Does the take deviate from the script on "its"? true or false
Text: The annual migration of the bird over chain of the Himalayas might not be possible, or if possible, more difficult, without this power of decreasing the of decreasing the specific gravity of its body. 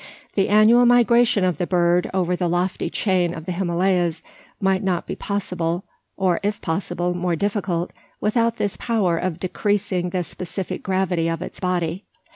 false